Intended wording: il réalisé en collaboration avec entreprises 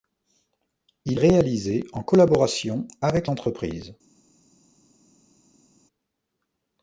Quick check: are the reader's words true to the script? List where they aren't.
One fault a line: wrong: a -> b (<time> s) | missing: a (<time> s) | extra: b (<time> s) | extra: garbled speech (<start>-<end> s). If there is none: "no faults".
no faults